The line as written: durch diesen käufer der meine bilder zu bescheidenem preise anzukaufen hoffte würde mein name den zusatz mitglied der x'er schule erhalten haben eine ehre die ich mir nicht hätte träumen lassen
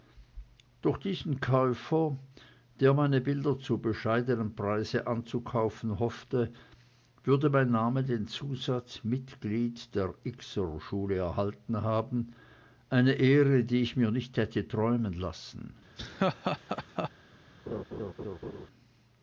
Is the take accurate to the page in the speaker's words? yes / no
yes